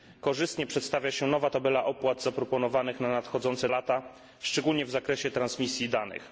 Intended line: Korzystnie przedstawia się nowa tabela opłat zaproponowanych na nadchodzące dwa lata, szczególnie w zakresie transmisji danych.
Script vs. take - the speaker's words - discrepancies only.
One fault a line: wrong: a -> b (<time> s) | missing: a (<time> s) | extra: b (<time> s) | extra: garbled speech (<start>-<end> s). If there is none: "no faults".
missing: dwa (3.7 s)